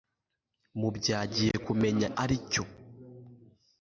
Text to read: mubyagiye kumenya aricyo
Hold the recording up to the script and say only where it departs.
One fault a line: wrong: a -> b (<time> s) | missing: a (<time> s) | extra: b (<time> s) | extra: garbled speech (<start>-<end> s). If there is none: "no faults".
no faults